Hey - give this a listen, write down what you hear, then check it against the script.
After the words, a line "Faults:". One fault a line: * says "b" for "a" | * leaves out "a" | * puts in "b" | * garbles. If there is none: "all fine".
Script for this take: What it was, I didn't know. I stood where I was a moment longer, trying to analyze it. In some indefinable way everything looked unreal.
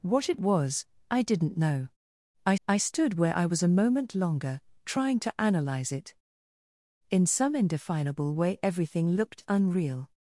What it was, I didn't know. I I stood where I was a moment longer, trying to analyze it. In some indefinable way everything looked unreal.
Faults:
* puts in "I"